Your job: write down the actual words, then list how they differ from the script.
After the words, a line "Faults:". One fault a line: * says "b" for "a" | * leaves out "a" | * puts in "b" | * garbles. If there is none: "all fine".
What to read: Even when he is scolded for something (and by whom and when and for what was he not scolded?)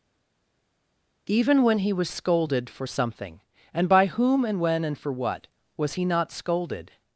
Even when he was scolded for something (and by whom and when and for what was he not scolded?)
Faults:
* says "was" for "is"